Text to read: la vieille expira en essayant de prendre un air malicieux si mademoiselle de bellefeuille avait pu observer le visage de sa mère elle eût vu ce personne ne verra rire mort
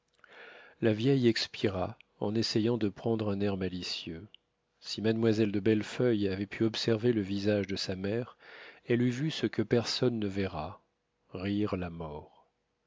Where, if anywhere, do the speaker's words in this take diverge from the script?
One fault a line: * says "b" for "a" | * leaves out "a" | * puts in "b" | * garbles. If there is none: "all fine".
* puts in "que"
* puts in "la"